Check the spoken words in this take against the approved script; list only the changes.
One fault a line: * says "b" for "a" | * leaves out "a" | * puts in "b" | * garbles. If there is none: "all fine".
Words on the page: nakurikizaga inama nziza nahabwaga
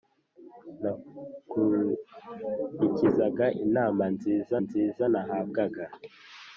* puts in "nziza"